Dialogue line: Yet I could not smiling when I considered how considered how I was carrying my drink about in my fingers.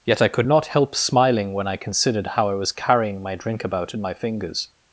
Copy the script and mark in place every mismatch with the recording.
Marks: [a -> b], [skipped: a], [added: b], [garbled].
Yet I could not [added: help] smiling when I considered how [skipped: considered how] I was carrying my drink about in my fingers.